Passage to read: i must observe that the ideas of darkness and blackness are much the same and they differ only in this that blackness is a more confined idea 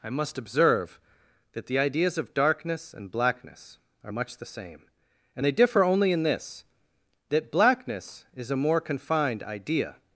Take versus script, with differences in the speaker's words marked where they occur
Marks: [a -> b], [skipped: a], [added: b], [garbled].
i must observe that the ideas of darkness and blackness are much the same and they differ only in this that blackness is a more confined idea